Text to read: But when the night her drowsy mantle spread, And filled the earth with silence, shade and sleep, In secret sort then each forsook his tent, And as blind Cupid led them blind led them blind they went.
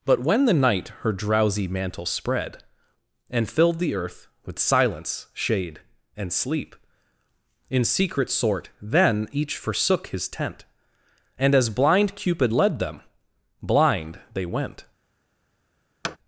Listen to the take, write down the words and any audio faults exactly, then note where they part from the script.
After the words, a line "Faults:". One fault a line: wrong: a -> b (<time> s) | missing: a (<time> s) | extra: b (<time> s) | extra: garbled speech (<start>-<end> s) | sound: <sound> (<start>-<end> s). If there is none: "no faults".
But when the night her drowsy mantle spread, And filled the earth with silence, shade and sleep, In secret sort then each forsook his tent, And as blind Cupid led them blind they went.
Faults:
missing: led them blind (14.2 s)
sound: thud (16.0-16.2 s)